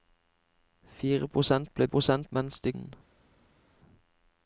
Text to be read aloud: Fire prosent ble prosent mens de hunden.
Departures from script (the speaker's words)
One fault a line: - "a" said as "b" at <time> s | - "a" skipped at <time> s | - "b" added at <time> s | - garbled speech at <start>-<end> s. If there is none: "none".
none